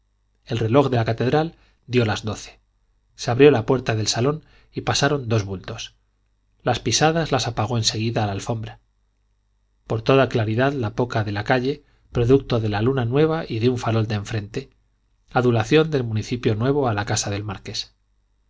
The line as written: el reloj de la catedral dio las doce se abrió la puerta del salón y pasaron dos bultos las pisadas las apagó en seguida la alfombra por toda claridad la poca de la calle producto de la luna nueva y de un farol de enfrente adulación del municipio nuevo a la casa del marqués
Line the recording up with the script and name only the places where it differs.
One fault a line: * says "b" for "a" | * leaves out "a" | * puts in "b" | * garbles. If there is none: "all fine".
all fine